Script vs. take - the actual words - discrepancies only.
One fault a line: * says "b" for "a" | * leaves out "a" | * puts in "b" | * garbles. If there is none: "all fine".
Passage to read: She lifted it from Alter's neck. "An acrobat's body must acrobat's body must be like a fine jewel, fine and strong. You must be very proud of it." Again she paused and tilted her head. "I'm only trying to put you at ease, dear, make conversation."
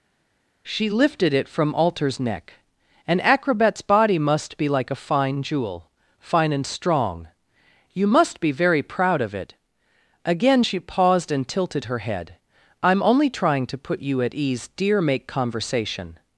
* leaves out "acrobat's body must"